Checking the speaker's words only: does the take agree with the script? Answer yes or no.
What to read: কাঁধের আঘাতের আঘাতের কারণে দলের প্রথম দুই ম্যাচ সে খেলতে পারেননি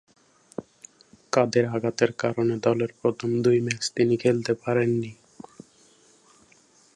no